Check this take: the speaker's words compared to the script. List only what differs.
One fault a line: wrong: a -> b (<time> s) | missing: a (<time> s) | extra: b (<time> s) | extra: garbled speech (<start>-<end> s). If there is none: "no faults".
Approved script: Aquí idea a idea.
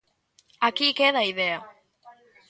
wrong: idea -> queda (1.0 s)